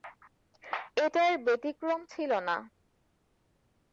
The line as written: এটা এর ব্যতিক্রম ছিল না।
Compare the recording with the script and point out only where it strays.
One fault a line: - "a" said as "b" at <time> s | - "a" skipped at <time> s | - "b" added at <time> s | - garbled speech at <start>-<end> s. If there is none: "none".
none